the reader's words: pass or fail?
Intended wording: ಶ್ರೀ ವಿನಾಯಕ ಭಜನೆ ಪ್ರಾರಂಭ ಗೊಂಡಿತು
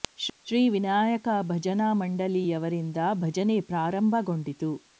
fail